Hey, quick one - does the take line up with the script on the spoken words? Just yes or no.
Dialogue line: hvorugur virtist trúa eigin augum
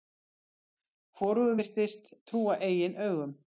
yes